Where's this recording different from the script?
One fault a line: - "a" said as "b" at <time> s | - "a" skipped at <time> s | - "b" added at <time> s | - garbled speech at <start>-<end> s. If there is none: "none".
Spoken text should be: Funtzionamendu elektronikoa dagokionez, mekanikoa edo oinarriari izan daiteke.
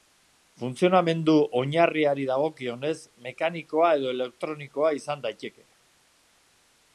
- "elektronikoa" said as "oinarriari" at 1.6 s
- "oinarriari" said as "elektronikoa" at 4.2 s